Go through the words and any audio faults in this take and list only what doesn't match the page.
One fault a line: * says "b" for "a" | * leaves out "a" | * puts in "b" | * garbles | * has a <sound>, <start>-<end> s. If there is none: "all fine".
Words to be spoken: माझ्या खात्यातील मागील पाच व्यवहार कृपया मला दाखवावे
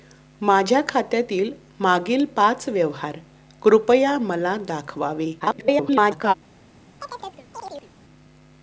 * garbles
* has a chirp, 7.0-7.9 s